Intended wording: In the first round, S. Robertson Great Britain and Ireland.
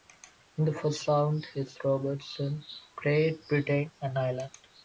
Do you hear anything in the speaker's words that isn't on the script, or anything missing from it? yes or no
no